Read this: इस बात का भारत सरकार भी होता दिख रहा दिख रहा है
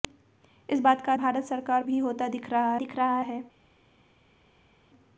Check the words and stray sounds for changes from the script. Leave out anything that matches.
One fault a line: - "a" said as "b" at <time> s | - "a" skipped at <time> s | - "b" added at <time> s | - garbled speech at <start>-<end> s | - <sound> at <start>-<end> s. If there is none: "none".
none